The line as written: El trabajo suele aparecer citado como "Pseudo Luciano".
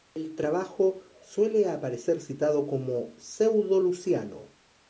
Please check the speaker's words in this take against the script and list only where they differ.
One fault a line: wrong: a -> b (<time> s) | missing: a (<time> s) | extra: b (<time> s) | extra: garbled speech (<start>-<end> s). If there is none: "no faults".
no faults